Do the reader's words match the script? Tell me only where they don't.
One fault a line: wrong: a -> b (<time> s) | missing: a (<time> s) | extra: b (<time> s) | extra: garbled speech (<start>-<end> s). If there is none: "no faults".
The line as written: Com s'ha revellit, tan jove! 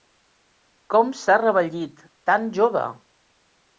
no faults